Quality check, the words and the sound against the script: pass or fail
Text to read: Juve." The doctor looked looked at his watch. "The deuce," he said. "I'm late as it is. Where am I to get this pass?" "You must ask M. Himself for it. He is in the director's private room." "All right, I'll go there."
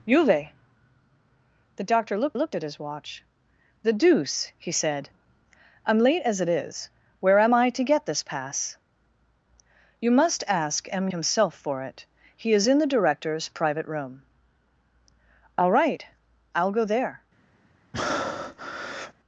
fail